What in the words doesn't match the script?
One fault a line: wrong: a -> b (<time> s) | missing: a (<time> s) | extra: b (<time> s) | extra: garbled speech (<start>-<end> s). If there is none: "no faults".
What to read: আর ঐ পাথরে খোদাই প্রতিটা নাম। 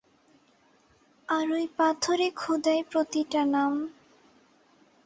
no faults